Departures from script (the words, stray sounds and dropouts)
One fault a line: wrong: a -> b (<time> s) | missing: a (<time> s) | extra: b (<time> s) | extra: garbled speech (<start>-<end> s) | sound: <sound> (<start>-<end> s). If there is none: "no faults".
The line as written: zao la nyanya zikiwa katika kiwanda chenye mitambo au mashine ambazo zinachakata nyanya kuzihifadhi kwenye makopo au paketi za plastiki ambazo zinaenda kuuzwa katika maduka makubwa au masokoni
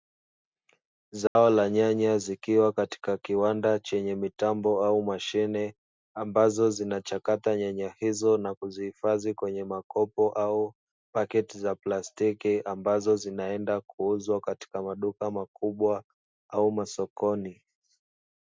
sound: dropout (1.3-1.4 s)
extra: hizo na (8.0 s)